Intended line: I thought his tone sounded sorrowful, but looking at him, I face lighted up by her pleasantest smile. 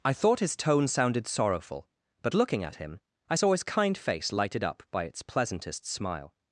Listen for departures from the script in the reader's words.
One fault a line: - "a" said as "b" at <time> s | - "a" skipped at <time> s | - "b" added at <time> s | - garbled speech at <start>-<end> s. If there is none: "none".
- "saw his kind" added at 3.3 s
- "her" said as "its" at 5.1 s